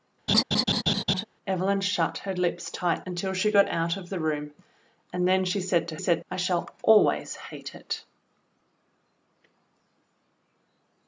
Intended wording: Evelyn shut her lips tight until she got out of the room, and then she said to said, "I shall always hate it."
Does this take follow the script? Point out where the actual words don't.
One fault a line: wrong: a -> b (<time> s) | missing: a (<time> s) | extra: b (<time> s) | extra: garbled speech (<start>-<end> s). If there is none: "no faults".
no faults